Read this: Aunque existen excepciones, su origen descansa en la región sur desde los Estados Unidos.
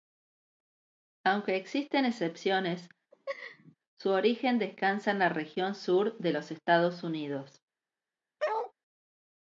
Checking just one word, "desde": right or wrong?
wrong